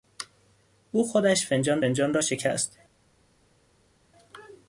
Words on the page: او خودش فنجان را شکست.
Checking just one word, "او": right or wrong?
right